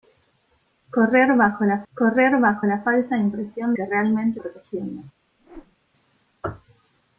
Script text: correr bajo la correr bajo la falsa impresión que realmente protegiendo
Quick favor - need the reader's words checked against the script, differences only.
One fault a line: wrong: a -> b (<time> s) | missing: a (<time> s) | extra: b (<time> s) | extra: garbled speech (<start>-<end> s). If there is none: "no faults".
no faults